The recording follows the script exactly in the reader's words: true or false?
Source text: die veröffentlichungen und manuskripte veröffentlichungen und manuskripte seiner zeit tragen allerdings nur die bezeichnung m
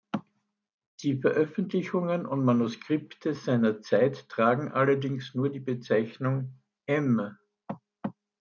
false